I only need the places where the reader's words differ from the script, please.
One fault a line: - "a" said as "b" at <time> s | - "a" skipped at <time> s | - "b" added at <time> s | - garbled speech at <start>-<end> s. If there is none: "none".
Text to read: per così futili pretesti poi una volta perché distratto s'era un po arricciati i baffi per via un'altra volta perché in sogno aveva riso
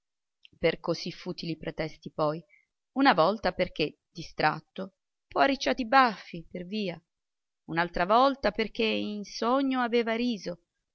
- "s'era un" skipped at 5.0 s